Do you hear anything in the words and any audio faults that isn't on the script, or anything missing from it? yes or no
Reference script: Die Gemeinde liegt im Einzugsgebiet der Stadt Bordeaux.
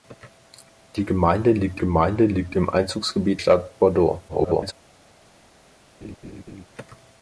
yes